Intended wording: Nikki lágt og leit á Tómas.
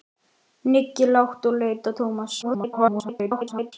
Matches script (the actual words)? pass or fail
fail